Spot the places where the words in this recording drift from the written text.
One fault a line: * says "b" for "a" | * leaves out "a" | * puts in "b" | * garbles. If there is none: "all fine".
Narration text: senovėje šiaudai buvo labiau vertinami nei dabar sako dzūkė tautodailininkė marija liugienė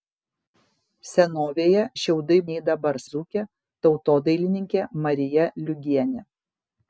* leaves out "buvo labiau vertinami"
* leaves out "sako"